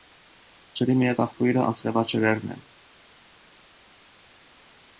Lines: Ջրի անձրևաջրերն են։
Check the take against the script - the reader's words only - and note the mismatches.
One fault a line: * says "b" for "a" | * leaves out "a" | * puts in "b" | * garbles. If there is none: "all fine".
* puts in "միակ աղբյուրը"